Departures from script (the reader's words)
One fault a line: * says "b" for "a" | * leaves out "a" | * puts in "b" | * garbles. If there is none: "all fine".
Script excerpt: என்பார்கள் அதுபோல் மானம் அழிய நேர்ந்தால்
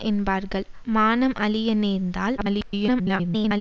* leaves out "அதுபோல்"
* garbles